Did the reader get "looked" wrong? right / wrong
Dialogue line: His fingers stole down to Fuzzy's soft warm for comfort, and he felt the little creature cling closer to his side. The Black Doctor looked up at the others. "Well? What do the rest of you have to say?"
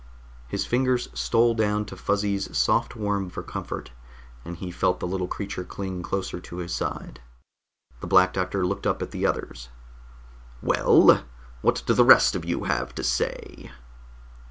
right